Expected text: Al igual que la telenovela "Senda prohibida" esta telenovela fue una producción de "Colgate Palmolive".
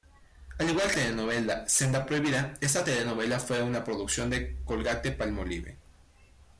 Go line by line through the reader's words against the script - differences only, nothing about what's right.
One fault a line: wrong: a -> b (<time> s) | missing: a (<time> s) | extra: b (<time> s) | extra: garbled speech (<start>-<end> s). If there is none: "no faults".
missing: la (1.0 s)